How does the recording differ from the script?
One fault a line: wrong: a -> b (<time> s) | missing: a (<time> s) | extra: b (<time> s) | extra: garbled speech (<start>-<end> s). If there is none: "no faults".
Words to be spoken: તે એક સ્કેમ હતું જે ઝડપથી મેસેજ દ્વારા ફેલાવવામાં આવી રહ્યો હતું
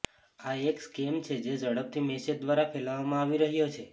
wrong: તે -> આ (0.4 s)
wrong: હતું -> છે (1.2 s)
wrong: હતું -> છે (3.7 s)